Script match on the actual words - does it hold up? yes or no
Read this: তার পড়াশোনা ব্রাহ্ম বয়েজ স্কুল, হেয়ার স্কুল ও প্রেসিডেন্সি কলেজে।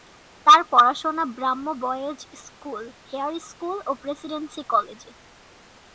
yes